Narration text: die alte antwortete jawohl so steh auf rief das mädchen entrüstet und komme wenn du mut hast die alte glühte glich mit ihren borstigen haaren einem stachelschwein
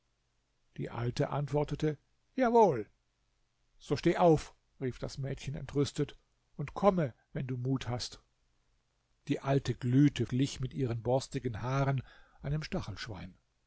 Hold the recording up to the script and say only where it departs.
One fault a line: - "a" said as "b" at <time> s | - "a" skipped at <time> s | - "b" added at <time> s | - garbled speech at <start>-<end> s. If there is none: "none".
none